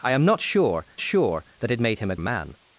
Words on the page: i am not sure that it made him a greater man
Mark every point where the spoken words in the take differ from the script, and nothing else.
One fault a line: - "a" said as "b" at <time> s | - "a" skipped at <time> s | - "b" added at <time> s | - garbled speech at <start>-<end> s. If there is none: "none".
- "sure" added at 1.0 s
- "greater" skipped at 2.1 s